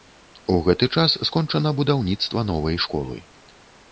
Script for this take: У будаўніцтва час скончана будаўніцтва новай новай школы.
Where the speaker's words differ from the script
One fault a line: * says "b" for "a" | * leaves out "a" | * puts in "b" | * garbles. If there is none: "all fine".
* says "гэты" for "будаўніцтва"
* leaves out "новай"